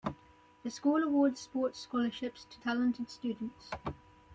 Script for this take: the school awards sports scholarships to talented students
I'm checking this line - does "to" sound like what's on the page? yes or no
yes